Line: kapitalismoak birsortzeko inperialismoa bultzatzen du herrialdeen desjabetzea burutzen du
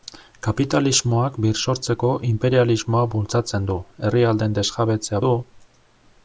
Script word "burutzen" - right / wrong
wrong